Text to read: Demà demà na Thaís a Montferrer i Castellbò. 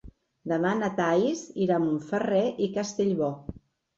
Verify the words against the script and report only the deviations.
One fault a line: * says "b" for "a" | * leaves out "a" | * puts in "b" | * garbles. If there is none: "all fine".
* leaves out "demà"
* puts in "irà"